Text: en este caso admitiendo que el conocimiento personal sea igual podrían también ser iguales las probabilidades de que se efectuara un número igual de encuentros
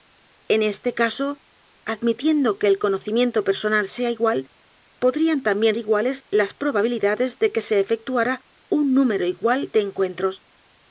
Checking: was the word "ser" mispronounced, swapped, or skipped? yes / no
yes